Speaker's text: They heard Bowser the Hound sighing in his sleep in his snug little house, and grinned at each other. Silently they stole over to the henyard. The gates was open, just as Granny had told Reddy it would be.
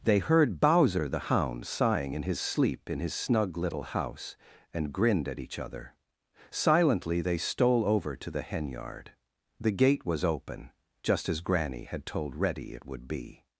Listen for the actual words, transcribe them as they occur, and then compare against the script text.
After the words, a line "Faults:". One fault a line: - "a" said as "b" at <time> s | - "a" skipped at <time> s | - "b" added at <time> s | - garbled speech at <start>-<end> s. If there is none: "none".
They heard Bowser the Hound sighing in his sleep in his snug little house, and grinned at each other. Silently they stole over to the henyard. The gate was open, just as Granny had told Reddy it would be.
Faults:
- "gates" said as "gate" at 9.7 s